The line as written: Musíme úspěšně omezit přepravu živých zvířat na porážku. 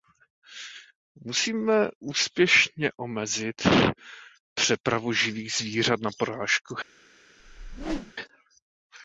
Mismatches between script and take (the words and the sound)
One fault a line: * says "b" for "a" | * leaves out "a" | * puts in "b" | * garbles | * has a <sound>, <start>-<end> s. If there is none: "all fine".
* has a whoosh, 7.4-8.1 s